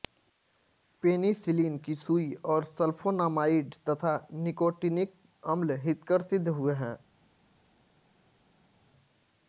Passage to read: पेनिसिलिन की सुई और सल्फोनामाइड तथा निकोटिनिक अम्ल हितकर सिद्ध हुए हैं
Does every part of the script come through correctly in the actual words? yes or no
yes